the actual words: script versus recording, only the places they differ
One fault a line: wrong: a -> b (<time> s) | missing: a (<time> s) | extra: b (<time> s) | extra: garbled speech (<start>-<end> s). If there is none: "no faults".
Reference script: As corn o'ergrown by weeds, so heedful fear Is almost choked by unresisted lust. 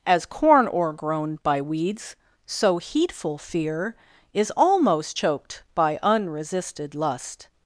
no faults